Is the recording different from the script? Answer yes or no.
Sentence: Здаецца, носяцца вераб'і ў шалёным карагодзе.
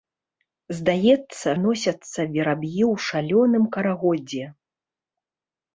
no